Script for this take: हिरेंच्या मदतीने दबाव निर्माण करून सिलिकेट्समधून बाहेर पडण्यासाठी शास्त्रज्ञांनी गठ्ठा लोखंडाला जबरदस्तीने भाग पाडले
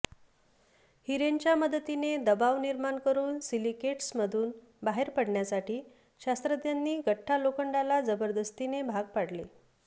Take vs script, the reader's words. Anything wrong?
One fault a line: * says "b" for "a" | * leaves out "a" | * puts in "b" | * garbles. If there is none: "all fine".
all fine